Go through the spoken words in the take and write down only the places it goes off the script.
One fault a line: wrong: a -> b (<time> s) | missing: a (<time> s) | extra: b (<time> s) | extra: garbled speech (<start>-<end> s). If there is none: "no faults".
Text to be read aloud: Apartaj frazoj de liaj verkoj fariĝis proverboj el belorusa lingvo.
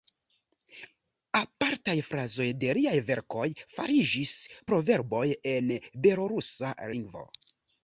wrong: el -> en (5.6 s)